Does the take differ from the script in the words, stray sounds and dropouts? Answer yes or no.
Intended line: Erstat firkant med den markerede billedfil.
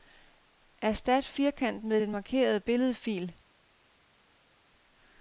no